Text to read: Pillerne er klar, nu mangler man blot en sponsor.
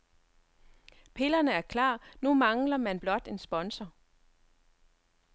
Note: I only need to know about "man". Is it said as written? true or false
true